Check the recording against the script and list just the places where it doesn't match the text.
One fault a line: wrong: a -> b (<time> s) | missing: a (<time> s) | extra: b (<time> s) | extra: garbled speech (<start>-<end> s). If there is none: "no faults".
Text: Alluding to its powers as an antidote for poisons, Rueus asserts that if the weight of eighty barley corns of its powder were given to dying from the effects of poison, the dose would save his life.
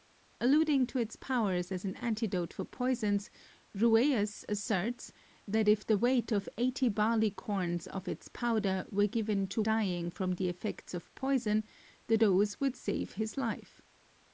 no faults